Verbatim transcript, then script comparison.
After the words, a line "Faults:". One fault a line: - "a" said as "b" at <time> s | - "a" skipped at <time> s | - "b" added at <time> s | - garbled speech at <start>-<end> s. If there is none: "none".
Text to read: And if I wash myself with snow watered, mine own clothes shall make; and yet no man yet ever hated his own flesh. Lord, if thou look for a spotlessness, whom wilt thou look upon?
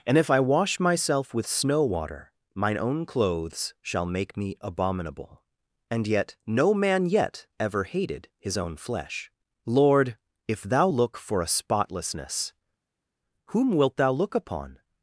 And if I wash myself with snow water, mine own clothes shall make me abominable; and yet no man yet ever hated his own flesh. Lord, if thou look for a spotlessness, whom wilt thou look upon?
Faults:
- "watered" said as "water" at 1.8 s
- "me abominable" added at 4.3 s